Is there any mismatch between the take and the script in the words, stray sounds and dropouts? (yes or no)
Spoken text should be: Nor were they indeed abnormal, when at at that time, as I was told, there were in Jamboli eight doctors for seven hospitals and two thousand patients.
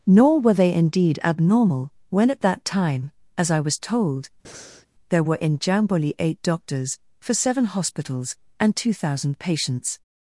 yes